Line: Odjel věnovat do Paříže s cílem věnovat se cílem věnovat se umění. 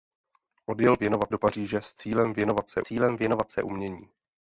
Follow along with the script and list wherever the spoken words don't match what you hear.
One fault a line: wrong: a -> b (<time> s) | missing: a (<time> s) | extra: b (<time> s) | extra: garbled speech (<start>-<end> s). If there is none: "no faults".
no faults